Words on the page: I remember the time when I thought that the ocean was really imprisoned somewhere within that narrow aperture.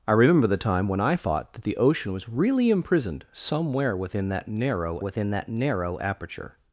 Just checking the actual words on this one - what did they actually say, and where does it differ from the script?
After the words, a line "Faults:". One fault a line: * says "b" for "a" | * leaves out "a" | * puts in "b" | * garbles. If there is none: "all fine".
I remember the time when I thought that the ocean was really imprisoned somewhere within that narrow within that narrow aperture.
Faults:
* puts in "within that narrow"